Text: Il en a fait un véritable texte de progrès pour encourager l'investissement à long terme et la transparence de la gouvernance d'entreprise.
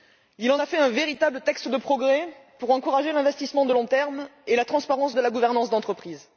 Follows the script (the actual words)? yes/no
yes